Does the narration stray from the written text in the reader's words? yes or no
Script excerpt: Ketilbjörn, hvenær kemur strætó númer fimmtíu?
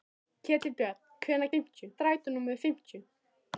yes